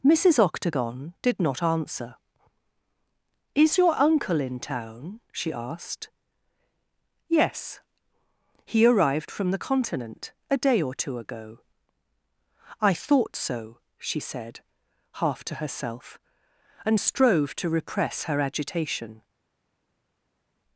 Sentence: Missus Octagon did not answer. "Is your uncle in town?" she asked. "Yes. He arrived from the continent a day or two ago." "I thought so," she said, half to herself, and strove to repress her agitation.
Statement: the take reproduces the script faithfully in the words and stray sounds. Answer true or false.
true